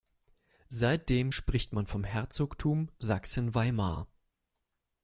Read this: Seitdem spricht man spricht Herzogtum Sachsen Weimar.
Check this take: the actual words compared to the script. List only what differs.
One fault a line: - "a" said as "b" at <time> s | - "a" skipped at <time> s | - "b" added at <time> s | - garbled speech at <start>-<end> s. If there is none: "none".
- "spricht" said as "vom" at 1.9 s